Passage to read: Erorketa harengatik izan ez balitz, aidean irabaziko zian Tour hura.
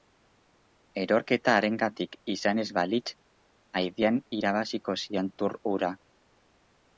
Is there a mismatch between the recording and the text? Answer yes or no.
no